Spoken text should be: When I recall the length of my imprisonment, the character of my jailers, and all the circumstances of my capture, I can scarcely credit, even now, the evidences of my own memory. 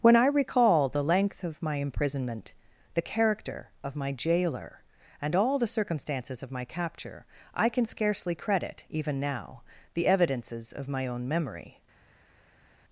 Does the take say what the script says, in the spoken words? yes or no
no